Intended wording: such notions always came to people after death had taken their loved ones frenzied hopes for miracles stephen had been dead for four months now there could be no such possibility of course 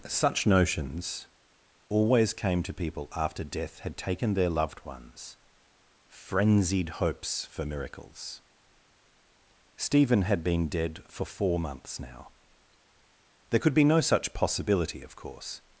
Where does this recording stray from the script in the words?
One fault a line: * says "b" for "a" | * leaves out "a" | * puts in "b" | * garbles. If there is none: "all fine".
all fine